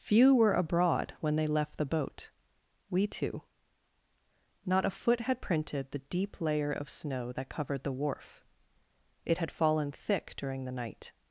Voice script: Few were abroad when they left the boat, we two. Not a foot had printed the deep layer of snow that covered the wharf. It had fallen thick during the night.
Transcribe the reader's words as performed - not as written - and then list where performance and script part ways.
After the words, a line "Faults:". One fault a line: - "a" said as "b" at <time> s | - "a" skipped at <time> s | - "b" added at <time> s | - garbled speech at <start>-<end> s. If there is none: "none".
Few were abroad when they left the boat, we two. Not a foot had printed the deep layer of snow that covered the wharf. It had fallen thick during the night.
Faults:
none